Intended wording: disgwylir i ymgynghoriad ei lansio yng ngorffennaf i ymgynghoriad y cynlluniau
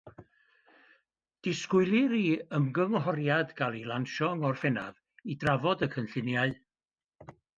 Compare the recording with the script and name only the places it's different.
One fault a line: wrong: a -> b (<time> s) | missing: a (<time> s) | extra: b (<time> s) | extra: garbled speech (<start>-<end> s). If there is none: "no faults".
extra: gael (3.6 s)
wrong: ymgynghoriad -> drafod (5.4 s)